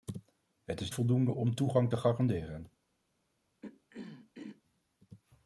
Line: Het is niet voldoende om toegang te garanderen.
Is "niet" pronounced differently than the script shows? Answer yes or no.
yes